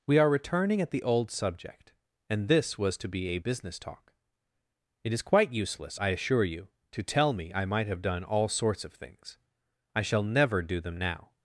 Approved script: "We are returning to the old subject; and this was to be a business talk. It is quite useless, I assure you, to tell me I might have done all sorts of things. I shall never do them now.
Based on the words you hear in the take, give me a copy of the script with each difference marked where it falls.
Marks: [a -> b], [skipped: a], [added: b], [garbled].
"We are returning [to -> at] the old subject; and this was to be a business talk. It is quite useless, I assure you, to tell me I might have done all sorts of things. I shall never do them now.